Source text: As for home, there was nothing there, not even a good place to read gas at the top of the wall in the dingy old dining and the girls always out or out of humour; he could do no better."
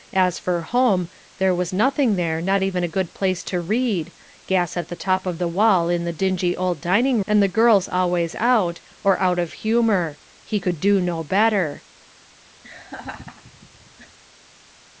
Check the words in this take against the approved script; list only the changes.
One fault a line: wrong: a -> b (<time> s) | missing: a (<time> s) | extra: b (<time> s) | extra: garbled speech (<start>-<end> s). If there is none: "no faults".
no faults